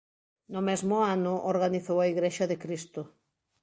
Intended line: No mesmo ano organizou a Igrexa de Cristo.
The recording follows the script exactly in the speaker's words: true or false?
true